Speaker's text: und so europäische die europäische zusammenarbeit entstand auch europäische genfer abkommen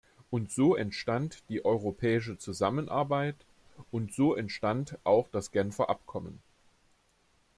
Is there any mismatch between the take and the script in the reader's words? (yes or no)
yes